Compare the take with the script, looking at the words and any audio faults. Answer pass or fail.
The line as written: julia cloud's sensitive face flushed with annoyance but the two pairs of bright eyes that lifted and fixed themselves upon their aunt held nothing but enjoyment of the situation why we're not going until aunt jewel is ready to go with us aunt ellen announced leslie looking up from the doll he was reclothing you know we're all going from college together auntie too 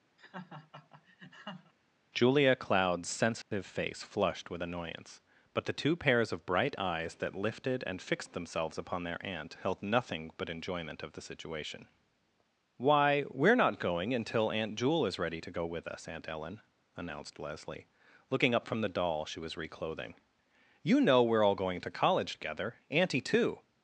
fail